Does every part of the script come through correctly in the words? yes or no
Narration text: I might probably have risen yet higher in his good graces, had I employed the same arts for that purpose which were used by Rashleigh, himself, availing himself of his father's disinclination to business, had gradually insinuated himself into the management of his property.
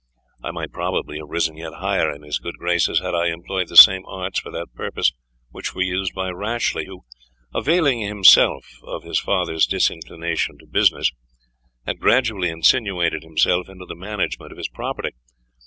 no